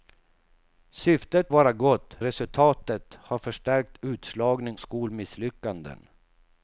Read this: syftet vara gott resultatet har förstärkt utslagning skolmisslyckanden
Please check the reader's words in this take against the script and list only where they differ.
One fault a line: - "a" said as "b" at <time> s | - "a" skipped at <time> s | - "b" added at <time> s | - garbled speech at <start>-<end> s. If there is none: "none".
none